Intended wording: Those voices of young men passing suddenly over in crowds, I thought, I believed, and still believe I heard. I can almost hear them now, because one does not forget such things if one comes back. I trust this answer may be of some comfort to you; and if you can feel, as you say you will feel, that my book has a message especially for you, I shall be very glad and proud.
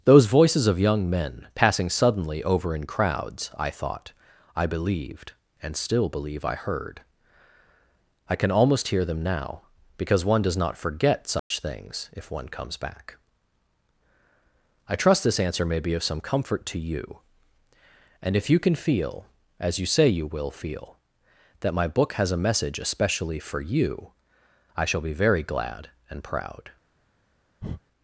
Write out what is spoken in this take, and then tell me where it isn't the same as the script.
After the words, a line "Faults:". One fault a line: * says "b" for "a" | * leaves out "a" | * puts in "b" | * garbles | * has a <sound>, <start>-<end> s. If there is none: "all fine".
Those voices of young men passing suddenly over in crowds, I thought, I believed, and still believe I heard. I can almost hear them now, because one does not forget such things if one comes back. I trust this answer may be of some comfort to you; and if you can feel, as you say you will feel, that my book has a message especially for you, I shall be very glad and proud.
Faults:
* has a dropout, 11.4-11.5 s
* has a breath, 27.6-27.8 s